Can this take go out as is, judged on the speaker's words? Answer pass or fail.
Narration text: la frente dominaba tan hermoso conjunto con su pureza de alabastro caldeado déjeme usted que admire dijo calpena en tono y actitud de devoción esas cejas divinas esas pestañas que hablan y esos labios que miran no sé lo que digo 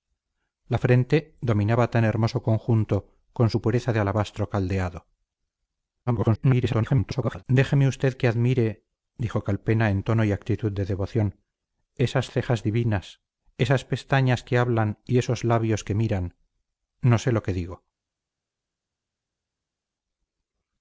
fail